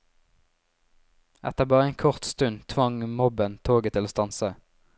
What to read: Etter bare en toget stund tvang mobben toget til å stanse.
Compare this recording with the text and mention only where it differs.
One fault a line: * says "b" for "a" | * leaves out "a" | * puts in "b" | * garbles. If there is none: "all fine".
* says "kort" for "toget"